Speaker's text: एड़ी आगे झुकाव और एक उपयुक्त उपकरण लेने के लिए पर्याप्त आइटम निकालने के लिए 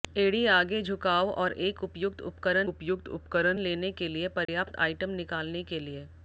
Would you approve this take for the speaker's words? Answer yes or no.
no